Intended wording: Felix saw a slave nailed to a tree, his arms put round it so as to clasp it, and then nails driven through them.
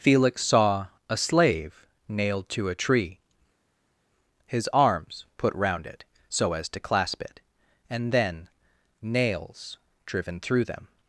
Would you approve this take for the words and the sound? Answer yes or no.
yes